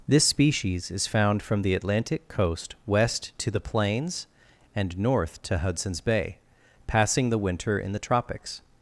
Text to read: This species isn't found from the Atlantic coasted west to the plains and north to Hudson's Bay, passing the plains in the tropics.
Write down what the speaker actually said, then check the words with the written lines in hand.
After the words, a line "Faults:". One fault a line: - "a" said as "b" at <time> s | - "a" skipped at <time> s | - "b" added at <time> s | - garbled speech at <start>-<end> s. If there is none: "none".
This species is found from the Atlantic coast west to the plains and north to Hudson's Bay, passing the winter in the tropics.
Faults:
- "isn't" said as "is" at 0.9 s
- "coasted" said as "coast" at 2.3 s
- "plains" said as "winter" at 7.4 s